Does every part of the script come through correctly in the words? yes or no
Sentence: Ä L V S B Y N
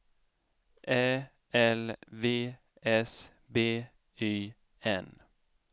yes